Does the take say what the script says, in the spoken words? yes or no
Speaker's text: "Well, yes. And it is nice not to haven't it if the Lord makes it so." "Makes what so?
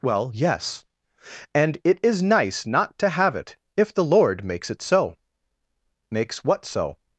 no